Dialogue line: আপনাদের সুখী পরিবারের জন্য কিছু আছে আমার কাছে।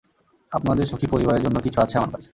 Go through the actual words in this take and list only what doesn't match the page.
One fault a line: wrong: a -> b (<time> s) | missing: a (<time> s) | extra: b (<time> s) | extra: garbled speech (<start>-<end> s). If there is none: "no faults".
no faults